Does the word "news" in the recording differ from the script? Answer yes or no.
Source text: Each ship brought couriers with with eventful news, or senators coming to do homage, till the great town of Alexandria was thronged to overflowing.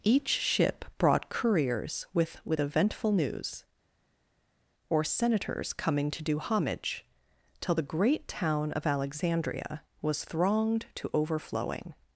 no